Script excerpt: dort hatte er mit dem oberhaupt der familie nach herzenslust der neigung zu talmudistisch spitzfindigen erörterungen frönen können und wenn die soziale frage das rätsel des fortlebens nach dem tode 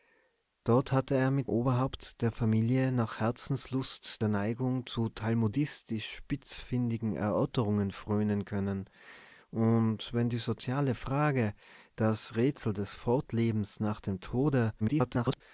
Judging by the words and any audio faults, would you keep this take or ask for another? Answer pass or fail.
fail